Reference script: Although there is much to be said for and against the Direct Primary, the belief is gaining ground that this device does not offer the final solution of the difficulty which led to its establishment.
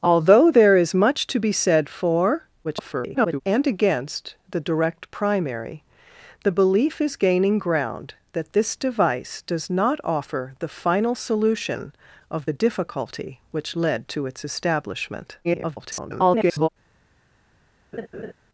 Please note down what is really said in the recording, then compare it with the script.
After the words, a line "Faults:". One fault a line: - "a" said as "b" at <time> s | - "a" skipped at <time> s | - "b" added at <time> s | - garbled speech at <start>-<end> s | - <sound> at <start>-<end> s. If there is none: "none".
Although there is much to be said for [garbled] and against the Direct Primary, the belief is gaining ground that this device does not offer the final solution of the difficulty which led to its establishment. [garbled]
Faults:
- garbled speech at 2.6-3.4 s
- garbled speech at 15.4-16.7 s
- laugh at 17.9-18.3 s